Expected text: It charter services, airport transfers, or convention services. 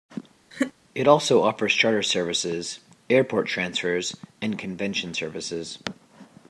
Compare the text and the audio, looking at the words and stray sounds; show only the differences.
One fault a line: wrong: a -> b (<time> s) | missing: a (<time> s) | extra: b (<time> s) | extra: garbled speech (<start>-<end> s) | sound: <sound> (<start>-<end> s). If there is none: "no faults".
sound: laugh (0.5-0.7 s)
extra: also offers (1.1 s)
wrong: or -> and (4.4 s)